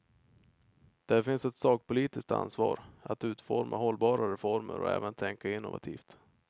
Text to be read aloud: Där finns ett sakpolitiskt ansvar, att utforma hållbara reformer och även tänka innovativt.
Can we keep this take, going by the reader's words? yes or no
yes